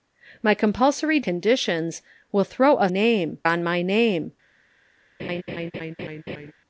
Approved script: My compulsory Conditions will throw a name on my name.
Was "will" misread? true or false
false